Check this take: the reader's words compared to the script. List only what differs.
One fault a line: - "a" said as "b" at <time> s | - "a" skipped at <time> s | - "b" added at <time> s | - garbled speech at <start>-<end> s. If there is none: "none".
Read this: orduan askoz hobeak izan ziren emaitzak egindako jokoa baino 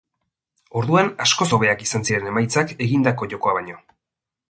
none